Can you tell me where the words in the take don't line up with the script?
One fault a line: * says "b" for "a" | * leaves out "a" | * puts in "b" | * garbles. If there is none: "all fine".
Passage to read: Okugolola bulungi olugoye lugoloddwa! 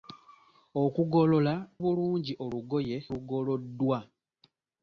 all fine